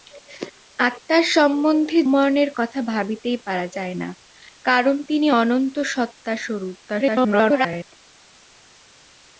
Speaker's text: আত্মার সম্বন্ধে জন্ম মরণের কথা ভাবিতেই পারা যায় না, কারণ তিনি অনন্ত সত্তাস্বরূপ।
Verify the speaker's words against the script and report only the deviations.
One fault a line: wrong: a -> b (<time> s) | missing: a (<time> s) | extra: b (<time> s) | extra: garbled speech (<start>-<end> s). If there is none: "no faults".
missing: জন্ম (2.0 s)
extra: garbled speech (6.8-7.9 s)